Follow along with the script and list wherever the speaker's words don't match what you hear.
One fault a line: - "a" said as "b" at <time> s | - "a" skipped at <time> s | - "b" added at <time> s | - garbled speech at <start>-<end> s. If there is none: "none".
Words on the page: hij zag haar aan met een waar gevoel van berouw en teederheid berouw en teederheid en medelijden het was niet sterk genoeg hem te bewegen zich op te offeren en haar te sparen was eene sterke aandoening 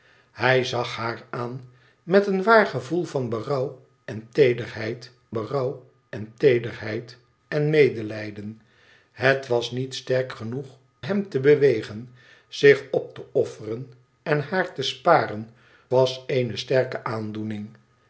none